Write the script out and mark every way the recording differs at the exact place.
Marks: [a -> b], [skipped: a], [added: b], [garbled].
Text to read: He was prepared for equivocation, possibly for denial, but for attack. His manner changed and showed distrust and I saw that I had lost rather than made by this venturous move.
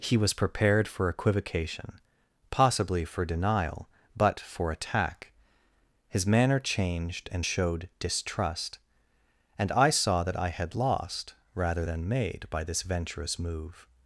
He was prepared for equivocation, possibly for denial, but for attack. His manner changed and showed distrust and I saw that I had lost rather than made by this venturous move.